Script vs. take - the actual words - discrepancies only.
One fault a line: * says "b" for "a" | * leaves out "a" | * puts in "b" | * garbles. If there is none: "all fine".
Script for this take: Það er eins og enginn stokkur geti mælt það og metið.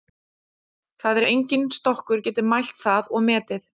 * leaves out "eins"